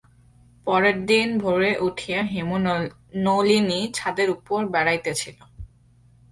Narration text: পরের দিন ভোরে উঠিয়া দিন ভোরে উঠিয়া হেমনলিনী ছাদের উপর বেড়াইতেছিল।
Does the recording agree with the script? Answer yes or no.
no